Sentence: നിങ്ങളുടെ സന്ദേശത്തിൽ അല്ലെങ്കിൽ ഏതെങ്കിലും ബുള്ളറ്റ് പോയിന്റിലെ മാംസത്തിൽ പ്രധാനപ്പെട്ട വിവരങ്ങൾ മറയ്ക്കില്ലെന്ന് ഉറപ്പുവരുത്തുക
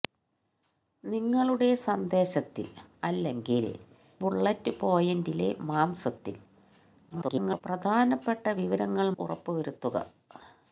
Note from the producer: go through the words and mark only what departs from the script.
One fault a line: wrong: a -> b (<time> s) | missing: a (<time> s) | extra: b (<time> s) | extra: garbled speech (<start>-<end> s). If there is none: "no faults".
missing: ഏതെങ്കിലും (3.6 s)
extra: garbled speech (7.1-7.6 s)
missing: മറയ്ക്കില്ലെന്ന് (9.1 s)